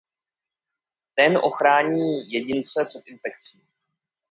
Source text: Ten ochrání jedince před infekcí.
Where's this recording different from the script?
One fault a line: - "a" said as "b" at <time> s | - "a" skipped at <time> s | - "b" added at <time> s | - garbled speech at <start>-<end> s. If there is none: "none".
none